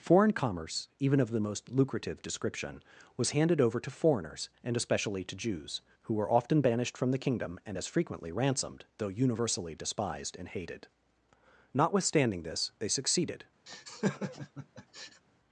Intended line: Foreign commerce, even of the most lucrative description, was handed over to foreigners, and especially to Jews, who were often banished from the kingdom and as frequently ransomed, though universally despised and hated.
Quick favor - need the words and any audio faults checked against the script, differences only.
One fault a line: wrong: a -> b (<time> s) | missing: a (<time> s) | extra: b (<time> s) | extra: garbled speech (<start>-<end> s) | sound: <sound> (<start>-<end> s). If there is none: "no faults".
extra: Notwithstanding this they succeeded (11.7 s)
sound: laugh (13.7-15.2 s)